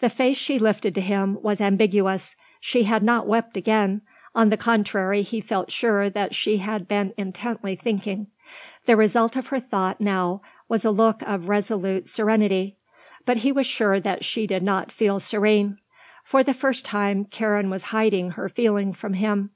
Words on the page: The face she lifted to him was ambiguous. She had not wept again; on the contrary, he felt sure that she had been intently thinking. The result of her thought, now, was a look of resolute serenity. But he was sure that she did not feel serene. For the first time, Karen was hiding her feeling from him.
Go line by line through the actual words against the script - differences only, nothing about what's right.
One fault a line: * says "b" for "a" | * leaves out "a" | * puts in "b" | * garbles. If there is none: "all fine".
all fine